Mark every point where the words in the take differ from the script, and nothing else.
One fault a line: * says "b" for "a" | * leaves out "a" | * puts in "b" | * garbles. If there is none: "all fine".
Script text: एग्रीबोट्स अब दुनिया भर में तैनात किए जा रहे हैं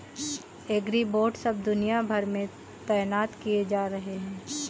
all fine